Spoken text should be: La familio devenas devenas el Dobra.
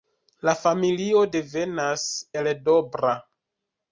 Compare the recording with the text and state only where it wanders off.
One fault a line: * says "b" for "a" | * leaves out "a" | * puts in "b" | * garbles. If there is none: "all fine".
* leaves out "devenas"